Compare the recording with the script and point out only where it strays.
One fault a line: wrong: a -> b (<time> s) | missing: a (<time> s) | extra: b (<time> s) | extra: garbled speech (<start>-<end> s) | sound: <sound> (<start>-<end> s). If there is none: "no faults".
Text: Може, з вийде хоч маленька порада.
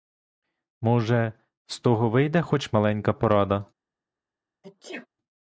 extra: того (1.8 s)
sound: sneeze (4.6-5.1 s)